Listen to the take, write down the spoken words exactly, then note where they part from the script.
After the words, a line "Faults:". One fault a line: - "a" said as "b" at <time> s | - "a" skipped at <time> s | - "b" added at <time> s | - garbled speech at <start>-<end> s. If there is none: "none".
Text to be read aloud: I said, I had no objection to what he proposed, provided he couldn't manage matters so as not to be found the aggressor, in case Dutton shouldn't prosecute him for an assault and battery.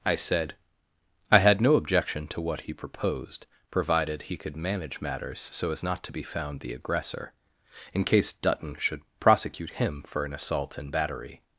I said, I had no objection to what he proposed, provided he could manage matters so as not to be found the aggressor, in case Dutton should prosecute him for an assault and battery.
Faults:
- "couldn't" said as "could" at 4.4 s
- "shouldn't" said as "should" at 8.8 s